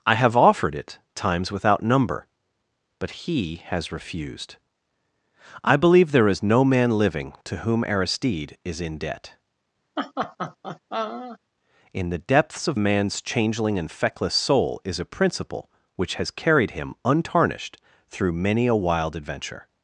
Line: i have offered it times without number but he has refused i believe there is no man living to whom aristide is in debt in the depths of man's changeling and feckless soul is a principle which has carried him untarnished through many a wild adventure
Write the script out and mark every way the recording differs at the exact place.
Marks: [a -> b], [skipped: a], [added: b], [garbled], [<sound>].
i have offered it times without number but he has refused i believe there is no man living to whom aristide is in debt [laugh] in the depths of man's changeling and feckless soul is a principle which has carried him untarnished through many a wild adventure